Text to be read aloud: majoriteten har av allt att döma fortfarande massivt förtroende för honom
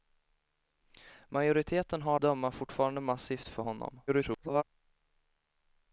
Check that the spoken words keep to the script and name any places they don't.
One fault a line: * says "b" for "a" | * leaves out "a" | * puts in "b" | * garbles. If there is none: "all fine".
* leaves out "av allt att"
* leaves out "förtroende"
* garbles